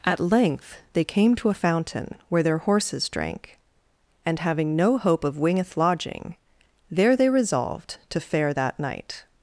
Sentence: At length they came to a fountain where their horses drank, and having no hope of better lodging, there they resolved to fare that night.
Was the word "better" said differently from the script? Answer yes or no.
yes